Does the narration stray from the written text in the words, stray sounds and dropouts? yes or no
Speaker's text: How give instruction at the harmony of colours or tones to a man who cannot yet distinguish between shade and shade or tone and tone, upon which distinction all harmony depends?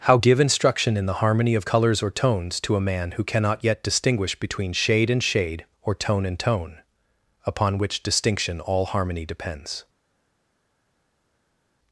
yes